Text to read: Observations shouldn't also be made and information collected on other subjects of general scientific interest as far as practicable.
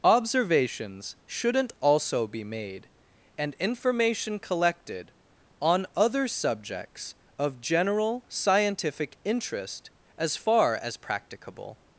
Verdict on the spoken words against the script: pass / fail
pass